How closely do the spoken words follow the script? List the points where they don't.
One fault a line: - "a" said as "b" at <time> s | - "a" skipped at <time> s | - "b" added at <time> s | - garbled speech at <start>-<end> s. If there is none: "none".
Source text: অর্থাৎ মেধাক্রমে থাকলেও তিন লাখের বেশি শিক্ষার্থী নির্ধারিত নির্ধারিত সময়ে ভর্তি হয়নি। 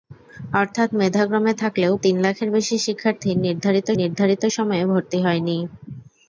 none